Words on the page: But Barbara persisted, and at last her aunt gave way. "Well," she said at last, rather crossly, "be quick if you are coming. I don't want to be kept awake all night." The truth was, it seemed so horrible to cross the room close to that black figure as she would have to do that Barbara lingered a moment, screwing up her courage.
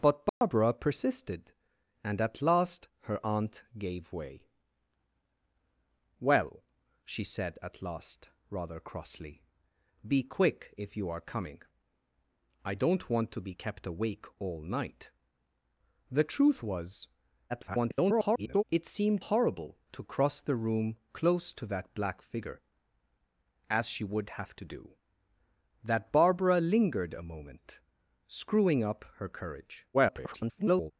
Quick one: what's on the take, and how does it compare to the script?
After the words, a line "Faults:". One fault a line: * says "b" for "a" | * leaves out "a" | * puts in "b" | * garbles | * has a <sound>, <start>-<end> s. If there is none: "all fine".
But Barbara persisted, and at last her aunt gave way. "Well," she said at last, rather crossly, "be quick if you are coming. I don't want to be kept awake all night." The truth was, [garbled] it seemed horrible to cross the room close to that black figure as she would have to do that Barbara lingered a moment, screwing up her courage. [garbled]
Faults:
* has a dropout, 0.3-0.4 s
* garbles
* leaves out "so"
* garbles